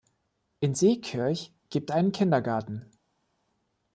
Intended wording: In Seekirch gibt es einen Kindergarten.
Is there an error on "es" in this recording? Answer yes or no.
yes